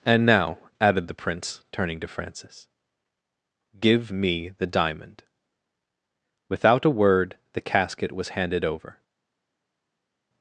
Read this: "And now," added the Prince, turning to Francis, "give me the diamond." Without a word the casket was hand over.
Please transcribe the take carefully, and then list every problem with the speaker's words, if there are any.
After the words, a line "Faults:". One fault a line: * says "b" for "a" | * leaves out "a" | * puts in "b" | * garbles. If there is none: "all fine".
"And now," added the Prince, turning to Francis, "give me the diamond." Without a word the casket was handed over.
Faults:
* says "handed" for "hand"